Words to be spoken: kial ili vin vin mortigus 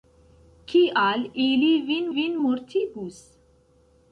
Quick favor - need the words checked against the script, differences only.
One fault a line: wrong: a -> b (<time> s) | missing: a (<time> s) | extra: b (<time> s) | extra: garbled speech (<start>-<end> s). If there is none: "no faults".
no faults